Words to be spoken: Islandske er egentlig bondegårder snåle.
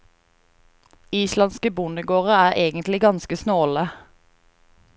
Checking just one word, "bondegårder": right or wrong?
wrong